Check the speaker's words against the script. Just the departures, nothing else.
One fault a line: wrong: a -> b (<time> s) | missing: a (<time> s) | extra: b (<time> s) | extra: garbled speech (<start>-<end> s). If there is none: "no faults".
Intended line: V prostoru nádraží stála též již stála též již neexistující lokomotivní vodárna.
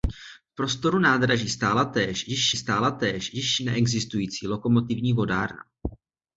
no faults